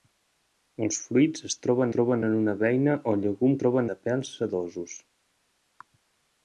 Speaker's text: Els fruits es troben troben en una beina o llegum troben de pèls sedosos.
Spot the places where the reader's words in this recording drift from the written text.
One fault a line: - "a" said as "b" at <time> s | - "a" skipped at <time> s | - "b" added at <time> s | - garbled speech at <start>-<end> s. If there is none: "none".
none